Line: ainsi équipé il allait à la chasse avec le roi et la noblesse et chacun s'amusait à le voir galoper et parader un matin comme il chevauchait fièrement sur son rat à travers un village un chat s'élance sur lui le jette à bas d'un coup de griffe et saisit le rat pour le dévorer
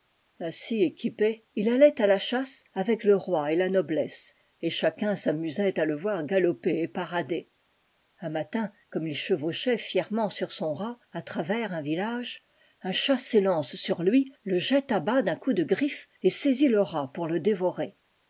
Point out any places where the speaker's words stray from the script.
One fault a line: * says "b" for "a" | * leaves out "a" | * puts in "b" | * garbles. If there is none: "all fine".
all fine